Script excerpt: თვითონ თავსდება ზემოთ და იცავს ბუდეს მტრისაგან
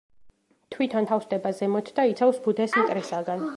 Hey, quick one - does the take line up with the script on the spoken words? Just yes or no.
yes